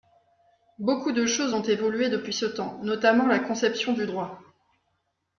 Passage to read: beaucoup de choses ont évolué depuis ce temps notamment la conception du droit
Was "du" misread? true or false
false